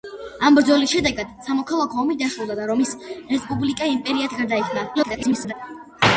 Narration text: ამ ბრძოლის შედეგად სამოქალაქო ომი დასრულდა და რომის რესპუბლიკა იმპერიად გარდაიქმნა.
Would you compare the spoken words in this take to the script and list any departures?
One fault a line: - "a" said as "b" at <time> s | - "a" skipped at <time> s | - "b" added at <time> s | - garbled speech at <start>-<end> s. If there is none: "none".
- garbled speech at 4.9-5.5 s